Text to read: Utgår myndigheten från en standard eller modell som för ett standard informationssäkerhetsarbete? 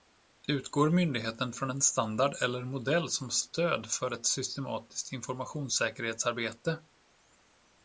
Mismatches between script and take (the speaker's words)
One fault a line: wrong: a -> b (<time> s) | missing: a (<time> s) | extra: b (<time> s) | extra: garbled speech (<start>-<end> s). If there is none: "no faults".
extra: stöd (3.3 s)
wrong: standard -> systematiskt (4.2 s)